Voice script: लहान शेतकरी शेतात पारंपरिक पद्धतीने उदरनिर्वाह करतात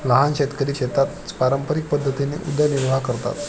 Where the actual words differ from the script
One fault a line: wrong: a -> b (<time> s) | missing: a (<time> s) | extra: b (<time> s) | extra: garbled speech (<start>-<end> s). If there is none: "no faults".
no faults